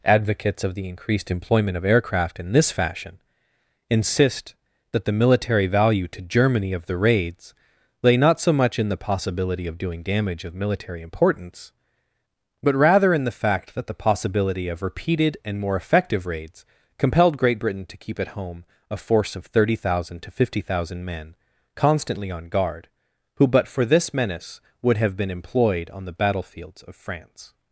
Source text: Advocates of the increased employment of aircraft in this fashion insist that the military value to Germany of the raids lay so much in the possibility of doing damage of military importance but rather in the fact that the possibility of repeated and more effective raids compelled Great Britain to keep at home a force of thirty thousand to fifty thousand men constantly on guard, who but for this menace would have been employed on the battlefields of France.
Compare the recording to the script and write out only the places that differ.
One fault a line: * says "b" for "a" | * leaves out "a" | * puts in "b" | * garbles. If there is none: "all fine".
* puts in "not"